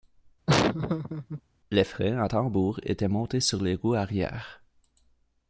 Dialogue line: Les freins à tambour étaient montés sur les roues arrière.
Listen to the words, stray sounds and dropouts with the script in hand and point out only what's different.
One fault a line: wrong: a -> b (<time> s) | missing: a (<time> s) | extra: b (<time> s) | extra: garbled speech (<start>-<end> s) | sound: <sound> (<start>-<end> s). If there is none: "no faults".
sound: laugh (0.5-1.4 s)